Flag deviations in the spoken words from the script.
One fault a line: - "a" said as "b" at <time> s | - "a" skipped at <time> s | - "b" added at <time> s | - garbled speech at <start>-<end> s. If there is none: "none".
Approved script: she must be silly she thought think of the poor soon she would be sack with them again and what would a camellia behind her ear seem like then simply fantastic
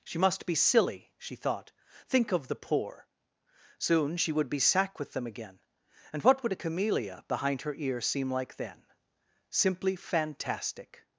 none